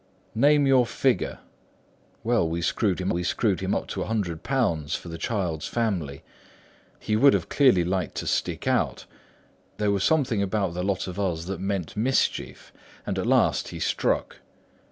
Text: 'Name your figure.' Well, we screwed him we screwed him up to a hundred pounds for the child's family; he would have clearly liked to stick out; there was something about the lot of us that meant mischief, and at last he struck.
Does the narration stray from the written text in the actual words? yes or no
no